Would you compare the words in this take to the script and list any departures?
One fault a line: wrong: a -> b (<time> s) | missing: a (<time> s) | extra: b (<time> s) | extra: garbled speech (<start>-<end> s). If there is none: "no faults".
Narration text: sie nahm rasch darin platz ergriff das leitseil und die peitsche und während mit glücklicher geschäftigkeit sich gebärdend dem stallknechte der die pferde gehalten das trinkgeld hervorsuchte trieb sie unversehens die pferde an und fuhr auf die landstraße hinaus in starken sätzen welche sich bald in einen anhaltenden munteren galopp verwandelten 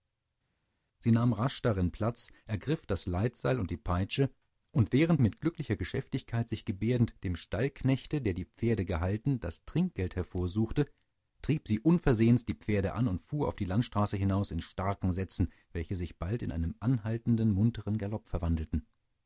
no faults